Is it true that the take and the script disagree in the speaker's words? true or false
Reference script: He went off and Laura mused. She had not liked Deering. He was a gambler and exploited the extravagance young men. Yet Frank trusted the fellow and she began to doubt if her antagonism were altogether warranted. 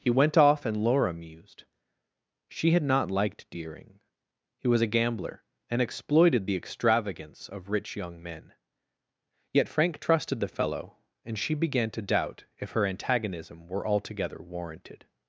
true